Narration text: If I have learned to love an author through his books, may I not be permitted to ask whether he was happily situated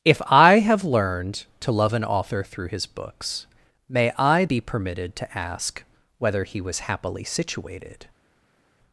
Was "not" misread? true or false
true